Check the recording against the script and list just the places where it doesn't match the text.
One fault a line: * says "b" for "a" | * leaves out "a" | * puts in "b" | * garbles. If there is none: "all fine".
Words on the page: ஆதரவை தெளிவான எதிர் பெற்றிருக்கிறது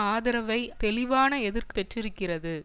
all fine